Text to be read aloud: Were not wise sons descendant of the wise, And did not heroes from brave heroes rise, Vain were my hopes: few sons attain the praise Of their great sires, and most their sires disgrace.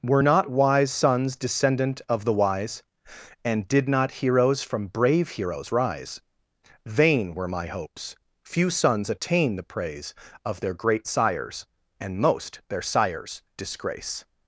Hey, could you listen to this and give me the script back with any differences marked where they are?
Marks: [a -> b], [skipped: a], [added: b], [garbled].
Were not wise sons descendant of the wise, And did not heroes from brave heroes rise, Vain were my hopes: few sons attain the praise Of their great sires, and most their sires disgrace.